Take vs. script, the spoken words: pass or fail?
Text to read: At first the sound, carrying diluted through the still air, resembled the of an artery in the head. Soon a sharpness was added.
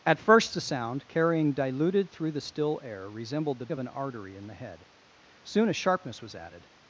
pass